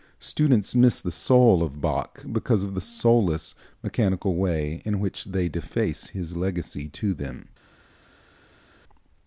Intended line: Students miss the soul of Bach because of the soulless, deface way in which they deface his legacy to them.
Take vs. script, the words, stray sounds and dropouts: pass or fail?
fail